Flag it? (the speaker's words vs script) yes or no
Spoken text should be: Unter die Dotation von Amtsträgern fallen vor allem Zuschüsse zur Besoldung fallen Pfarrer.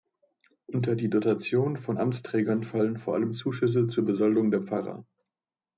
yes